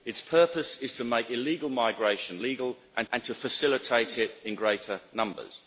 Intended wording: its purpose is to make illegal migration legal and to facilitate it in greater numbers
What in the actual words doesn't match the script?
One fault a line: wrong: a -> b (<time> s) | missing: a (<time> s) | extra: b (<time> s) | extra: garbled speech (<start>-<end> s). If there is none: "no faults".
extra: and (3.1 s)